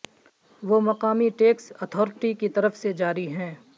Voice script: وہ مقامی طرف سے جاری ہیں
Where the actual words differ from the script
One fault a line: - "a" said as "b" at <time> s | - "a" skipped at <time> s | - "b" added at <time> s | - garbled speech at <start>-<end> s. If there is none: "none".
- "ٹیکس اتھارٹی کی" added at 1.4 s